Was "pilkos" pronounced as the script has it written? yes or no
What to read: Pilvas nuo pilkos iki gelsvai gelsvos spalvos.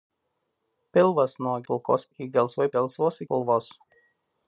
yes